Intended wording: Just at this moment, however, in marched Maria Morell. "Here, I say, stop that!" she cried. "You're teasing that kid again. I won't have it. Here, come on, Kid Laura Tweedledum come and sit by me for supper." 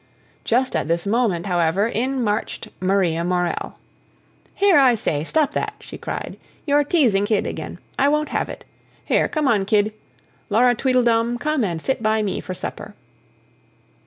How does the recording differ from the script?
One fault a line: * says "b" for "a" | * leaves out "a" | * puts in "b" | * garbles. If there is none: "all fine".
* leaves out "that"